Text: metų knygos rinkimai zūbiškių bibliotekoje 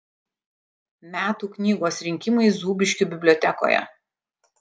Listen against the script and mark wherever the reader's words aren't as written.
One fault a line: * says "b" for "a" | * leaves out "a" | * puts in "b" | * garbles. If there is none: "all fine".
all fine